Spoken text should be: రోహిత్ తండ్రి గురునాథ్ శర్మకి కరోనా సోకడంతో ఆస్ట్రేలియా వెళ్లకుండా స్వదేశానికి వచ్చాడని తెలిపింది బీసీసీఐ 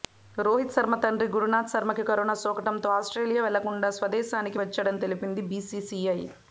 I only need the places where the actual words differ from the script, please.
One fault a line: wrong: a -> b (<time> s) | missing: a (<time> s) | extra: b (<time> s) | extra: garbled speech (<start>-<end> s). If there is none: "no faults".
extra: శర్మ (0.8 s)